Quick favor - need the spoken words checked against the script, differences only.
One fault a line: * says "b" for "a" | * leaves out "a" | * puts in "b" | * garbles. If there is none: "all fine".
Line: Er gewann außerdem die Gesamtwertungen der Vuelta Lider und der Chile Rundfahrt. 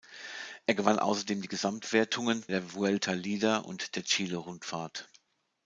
all fine